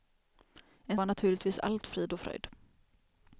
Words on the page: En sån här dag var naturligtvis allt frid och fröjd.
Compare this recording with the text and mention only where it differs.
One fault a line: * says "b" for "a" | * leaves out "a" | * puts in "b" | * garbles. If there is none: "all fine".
* leaves out "sån här dag"